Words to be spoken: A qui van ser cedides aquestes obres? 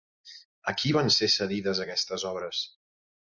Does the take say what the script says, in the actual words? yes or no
yes